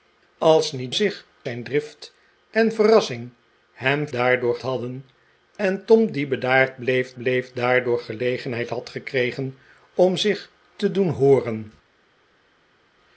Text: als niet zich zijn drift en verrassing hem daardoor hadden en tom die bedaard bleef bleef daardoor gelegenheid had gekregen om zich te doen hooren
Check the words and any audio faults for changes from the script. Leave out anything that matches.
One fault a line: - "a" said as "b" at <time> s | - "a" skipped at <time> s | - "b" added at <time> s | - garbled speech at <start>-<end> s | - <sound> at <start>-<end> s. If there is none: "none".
none